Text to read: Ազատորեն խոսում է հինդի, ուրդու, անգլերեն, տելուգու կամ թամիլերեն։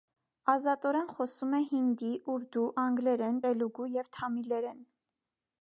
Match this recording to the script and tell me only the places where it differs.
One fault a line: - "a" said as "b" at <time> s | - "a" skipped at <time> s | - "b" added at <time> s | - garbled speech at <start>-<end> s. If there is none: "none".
- "կամ" said as "և" at 4.0 s